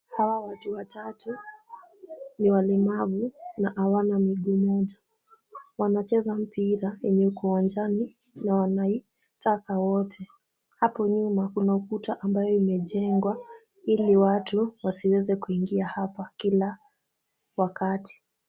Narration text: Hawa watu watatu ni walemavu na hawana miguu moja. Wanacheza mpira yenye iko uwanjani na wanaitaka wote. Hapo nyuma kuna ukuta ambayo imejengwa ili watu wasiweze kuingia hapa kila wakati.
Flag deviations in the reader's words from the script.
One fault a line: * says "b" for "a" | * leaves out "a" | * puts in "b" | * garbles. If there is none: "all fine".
all fine